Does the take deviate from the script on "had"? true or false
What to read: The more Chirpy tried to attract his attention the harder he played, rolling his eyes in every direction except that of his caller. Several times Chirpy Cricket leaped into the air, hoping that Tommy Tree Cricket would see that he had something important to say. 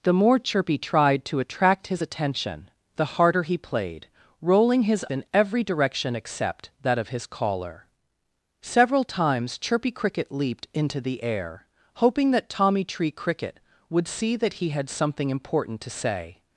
false